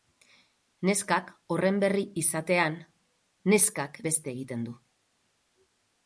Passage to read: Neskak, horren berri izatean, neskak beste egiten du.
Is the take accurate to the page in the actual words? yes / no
yes